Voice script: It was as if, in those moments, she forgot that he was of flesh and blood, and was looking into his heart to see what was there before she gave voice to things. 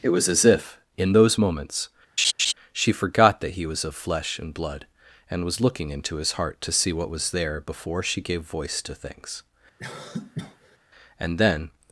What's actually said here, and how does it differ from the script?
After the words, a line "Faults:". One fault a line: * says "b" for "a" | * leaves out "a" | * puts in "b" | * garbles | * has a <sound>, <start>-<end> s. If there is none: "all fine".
It was as if, in those moments, she forgot that he was of flesh and blood, and was looking into his heart to see what was there before she gave voice to things. And then
Faults:
* has a laugh, 2.2-2.5 s
* has a cough, 9.8-10.8 s
* puts in "And then"